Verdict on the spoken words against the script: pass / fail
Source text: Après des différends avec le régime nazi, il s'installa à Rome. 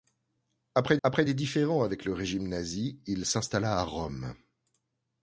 fail